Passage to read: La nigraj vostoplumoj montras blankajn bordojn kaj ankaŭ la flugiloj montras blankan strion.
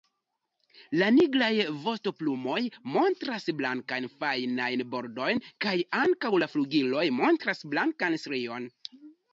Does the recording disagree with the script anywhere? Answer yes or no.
yes